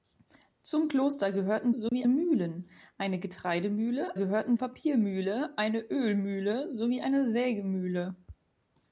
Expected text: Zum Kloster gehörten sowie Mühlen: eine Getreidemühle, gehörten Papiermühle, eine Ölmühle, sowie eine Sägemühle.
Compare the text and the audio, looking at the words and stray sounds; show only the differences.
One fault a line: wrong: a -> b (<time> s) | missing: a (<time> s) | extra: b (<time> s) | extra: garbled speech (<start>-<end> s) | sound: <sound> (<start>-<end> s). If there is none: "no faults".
sound: dropout (1.9-1.9 s)